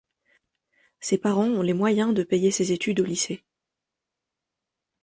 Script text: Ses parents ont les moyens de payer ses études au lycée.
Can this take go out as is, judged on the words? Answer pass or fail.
pass